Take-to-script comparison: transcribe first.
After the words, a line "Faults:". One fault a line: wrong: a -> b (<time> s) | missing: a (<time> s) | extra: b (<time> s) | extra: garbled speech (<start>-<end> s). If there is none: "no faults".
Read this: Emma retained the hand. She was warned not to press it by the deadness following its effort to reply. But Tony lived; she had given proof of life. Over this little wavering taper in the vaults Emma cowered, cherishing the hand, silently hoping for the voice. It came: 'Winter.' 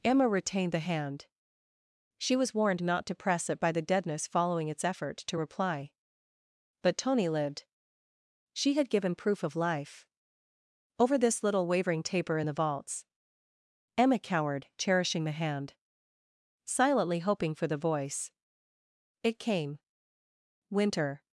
Emma retained the hand. She was warned not to press it by the deadness following its effort to reply. But Tony lived; she had given proof of life. Over this little wavering taper in the vaults Emma cowered, cherishing the hand, silently hoping for the voice. It came: 'Winter.'
Faults:
no faults